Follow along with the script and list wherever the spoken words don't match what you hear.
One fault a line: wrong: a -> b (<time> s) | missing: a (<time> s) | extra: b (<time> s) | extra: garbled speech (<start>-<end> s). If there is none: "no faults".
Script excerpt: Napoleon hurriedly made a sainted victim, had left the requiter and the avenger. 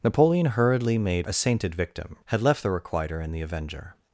no faults